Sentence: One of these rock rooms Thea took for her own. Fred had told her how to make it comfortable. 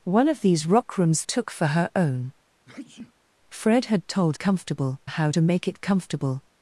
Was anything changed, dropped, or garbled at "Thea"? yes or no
yes